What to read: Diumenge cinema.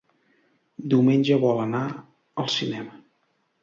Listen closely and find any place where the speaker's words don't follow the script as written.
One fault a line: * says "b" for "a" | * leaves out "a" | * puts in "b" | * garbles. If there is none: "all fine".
* puts in "vol anar al"